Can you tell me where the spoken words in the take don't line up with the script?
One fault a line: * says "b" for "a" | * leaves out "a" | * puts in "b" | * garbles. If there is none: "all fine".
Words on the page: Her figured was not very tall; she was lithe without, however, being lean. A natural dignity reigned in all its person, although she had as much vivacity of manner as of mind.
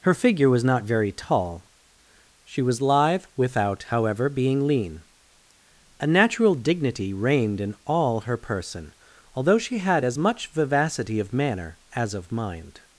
* says "figure" for "figured"
* says "her" for "its"